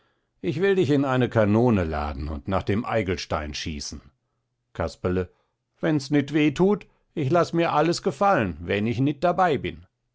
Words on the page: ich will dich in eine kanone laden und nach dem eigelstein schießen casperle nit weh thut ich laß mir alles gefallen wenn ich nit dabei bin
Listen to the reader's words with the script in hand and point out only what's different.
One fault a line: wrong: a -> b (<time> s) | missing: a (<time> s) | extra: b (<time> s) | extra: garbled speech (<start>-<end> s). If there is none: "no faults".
extra: wenns (5.8 s)